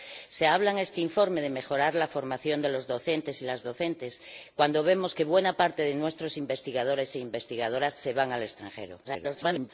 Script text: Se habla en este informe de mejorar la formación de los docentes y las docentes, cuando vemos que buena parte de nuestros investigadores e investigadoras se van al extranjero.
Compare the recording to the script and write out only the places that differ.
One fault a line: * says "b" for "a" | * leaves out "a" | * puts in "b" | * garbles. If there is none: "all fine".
* garbles